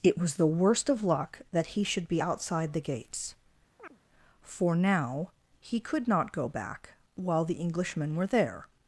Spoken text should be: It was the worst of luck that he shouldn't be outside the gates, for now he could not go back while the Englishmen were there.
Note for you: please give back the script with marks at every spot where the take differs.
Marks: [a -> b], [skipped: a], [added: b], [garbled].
It was the worst of luck that he [shouldn't -> should] be outside the gates, for now he could not go back while the Englishmen were there.